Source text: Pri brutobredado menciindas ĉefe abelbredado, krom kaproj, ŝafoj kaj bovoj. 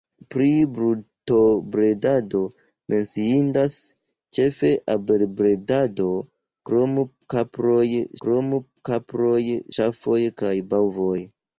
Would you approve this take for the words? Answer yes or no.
no